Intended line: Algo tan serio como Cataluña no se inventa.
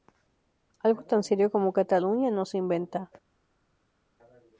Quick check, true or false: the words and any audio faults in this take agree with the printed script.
true